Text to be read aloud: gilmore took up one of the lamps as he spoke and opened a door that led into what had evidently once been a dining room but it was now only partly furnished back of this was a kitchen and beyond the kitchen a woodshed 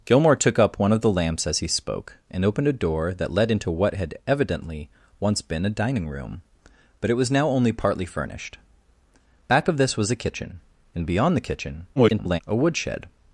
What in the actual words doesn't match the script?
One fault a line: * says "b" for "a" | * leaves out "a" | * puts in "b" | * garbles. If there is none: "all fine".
* garbles